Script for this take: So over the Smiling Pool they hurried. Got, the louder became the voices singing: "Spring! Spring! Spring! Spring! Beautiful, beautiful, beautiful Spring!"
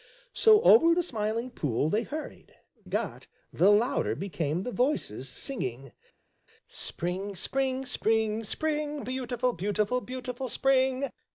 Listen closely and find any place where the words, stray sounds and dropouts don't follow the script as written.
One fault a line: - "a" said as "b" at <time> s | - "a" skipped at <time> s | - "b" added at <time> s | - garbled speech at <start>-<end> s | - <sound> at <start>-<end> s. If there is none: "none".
none